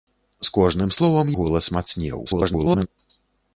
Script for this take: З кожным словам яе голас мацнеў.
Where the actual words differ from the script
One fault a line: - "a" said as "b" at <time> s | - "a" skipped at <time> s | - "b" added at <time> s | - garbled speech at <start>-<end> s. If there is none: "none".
- "яе" skipped at 1.3 s
- garbled speech at 2.2-2.9 s